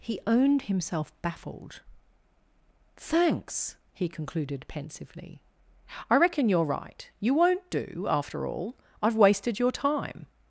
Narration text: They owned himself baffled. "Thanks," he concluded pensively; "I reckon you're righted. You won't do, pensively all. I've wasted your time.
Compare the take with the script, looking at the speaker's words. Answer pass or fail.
fail